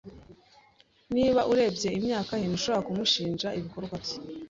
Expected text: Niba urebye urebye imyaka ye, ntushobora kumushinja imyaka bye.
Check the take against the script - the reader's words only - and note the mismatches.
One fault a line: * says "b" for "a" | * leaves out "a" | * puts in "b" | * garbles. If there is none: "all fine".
* leaves out "urebye"
* says "ibikorwa" for "imyaka"